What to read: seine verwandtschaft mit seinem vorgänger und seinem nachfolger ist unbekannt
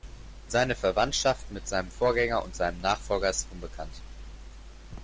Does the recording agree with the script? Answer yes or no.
yes